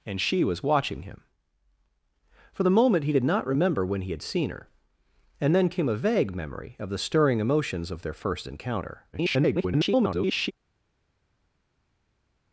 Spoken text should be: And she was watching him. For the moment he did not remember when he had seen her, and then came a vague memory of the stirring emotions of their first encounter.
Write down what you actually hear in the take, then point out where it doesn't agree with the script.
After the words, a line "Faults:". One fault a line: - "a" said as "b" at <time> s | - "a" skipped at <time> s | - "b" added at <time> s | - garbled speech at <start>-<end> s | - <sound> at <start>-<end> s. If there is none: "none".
And she was watching him. For the moment he did not remember when he had seen her, and then came a vague memory of the stirring emotions of their first encounter. [garbled]
Faults:
- garbled speech at 9.1-10.5 s